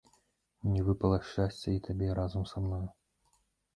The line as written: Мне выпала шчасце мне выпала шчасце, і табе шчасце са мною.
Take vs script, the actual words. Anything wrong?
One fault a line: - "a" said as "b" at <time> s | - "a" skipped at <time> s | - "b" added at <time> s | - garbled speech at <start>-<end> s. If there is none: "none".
- "мне выпала шчасце" skipped at 1.7 s
- "шчасце" said as "разам" at 2.2 s